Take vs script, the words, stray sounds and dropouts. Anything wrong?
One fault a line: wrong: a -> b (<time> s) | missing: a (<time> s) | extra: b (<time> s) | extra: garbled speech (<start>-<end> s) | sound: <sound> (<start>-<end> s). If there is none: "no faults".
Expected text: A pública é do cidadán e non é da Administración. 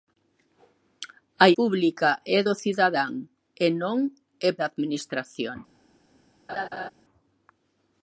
sound: laugh (6.5-6.9 s)